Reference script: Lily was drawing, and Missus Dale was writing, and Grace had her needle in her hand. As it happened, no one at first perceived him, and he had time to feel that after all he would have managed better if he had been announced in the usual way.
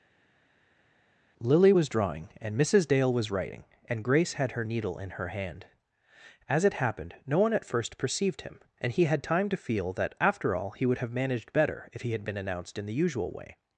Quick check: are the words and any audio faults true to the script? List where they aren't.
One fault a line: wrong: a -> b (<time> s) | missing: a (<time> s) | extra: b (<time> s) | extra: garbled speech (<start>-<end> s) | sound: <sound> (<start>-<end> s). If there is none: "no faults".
no faults